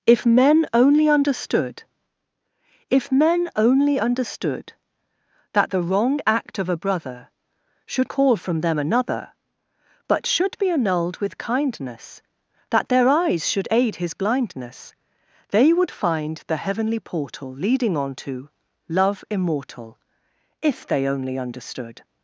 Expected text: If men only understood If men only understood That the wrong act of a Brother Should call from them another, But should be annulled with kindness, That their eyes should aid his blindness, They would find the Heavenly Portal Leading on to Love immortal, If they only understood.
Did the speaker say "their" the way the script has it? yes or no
yes